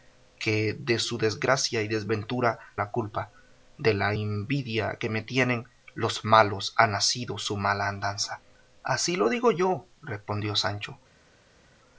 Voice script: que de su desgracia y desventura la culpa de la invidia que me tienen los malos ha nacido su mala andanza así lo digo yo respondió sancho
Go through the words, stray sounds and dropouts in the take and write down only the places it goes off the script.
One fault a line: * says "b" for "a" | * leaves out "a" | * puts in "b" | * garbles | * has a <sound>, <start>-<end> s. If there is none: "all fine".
all fine